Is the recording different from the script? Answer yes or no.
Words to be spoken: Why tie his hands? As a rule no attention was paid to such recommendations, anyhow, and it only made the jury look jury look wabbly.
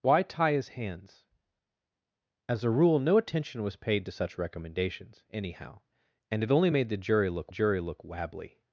no